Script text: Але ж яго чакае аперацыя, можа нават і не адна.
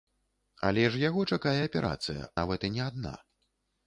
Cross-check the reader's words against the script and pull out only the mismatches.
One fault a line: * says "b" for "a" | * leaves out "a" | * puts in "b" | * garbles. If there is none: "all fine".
* leaves out "можа"